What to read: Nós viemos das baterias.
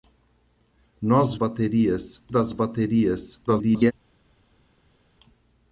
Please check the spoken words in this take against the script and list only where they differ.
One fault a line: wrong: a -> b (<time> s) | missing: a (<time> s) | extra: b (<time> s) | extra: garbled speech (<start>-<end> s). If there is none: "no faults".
wrong: viemos -> baterias (1.3 s)
extra: garbled speech (3.5-3.9 s)